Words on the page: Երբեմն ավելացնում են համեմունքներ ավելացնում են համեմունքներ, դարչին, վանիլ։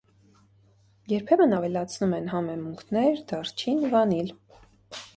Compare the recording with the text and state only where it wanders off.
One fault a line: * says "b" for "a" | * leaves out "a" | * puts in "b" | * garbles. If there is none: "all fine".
* leaves out "ավելացնում են համեմունքներ"